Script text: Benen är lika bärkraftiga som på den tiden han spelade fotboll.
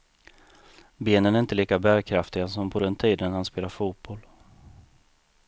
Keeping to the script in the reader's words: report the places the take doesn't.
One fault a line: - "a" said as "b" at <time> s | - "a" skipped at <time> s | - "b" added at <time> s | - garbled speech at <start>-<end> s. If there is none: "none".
- "inte" added at 1.4 s